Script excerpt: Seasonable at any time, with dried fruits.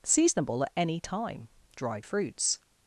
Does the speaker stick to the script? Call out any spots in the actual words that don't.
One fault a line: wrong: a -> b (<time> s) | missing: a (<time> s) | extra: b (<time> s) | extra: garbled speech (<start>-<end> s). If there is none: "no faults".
missing: with (1.5 s)